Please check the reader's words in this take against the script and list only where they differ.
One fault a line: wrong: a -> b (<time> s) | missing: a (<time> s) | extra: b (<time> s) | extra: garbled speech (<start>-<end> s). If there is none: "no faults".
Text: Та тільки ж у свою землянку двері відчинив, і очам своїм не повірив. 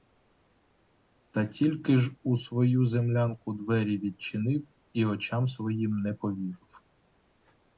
no faults